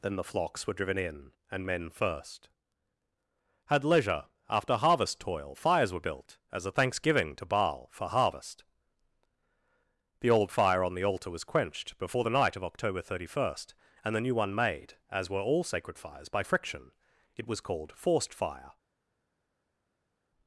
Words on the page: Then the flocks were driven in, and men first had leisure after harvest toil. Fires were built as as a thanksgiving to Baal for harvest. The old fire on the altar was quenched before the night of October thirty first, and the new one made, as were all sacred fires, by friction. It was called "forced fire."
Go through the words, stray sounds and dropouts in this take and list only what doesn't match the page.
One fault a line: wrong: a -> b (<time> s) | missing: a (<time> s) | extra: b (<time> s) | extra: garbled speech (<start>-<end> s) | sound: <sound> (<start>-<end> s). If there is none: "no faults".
missing: as (6.7 s)